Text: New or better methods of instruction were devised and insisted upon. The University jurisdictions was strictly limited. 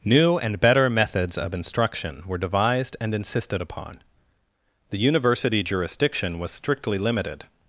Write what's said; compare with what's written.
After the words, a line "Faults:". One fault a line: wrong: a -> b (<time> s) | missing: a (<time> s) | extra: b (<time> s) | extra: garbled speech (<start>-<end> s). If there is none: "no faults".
New and better methods of instruction were devised and insisted upon. The University jurisdiction was strictly limited.
Faults:
wrong: or -> and (0.4 s)
wrong: jurisdictions -> jurisdiction (5.6 s)